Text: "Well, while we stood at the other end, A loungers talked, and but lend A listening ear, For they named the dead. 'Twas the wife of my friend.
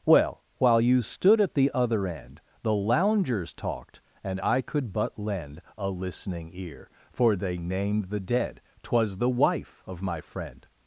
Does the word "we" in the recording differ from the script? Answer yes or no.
yes